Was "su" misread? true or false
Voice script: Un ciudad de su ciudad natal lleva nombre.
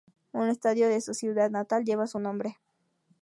false